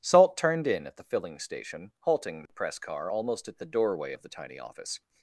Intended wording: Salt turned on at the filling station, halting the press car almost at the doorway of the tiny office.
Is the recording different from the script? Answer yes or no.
yes